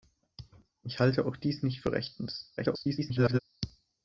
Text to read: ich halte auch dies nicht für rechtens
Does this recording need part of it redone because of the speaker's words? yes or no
yes